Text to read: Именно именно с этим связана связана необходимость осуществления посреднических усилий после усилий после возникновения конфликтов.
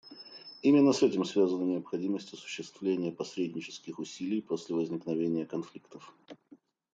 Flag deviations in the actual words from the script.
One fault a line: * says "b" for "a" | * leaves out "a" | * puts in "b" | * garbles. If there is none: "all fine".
* leaves out "именно"
* leaves out "связана"
* leaves out "усилий после"